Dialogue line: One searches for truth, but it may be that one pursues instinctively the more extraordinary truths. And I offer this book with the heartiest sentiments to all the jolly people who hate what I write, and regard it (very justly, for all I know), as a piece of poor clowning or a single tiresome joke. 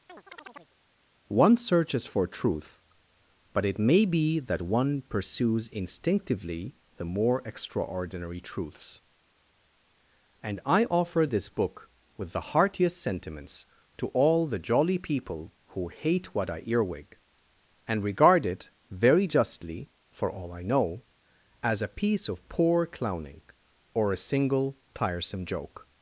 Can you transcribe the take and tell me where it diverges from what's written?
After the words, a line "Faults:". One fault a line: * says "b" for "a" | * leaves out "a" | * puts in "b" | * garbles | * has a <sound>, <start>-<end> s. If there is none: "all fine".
One searches for truth, but it may be that one pursues instinctively the more extraordinary truths. And I offer this book with the heartiest sentiments to all the jolly people who hate what I earwig, and regard it (very justly, for all I know), as a piece of poor clowning or a single tiresome joke.
Faults:
* has a chirp, 0.1-0.8 s
* says "earwig" for "write"